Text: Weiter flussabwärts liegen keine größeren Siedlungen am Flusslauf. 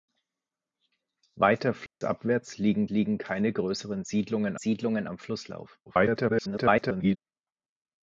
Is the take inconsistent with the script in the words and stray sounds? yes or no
yes